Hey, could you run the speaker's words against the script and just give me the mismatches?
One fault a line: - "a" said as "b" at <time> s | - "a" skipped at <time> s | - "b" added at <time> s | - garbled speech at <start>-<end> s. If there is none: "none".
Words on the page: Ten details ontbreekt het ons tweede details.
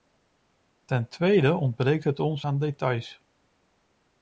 - "details" said as "tweede" at 1.1 s
- "tweede" said as "aan" at 2.4 s